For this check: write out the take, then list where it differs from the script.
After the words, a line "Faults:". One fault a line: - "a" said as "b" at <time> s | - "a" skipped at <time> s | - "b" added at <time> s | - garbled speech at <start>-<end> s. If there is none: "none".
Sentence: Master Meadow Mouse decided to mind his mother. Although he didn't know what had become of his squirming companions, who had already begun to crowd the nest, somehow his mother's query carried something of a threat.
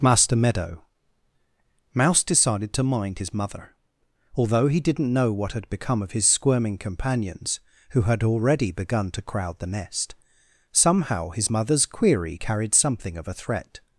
Master Meadow Mouse decided to mind his mother. Although he didn't know what had become of his squirming companions, who had already begun to crowd the nest, somehow his mother's query carried something of a threat.
Faults:
none